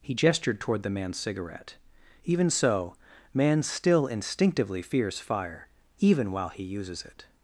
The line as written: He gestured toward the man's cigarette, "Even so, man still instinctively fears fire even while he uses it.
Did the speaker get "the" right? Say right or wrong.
right